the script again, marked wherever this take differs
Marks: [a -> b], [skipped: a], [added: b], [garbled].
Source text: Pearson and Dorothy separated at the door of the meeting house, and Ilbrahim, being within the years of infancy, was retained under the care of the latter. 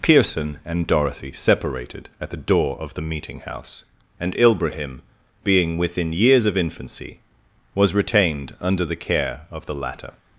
Pearson and Dorothy separated at the door of the meeting house, and Ilbrahim, being within [skipped: the] years of infancy, was retained under the care of the latter.